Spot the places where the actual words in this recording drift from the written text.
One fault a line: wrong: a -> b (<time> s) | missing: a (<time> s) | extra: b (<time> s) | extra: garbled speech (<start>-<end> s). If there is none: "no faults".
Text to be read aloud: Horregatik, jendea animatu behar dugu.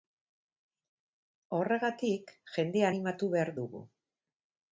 no faults